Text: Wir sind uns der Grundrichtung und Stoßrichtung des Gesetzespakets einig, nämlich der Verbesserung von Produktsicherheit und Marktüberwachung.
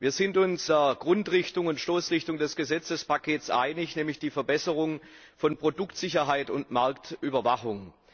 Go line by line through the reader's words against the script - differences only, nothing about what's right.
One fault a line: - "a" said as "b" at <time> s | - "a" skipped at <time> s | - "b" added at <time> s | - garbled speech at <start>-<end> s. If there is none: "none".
none